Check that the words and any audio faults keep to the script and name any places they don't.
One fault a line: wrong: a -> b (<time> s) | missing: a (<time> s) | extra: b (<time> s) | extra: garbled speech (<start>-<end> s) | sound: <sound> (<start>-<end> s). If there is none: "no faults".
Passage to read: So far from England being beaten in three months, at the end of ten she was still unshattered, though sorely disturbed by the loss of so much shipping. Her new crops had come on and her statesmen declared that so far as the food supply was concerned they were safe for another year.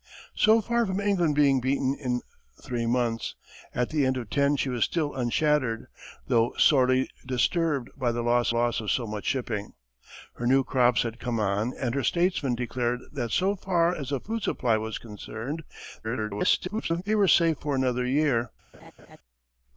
extra: loss (8.5 s)
extra: garbled speech (16.0-17.0 s)
sound: laugh (18.7-19.2 s)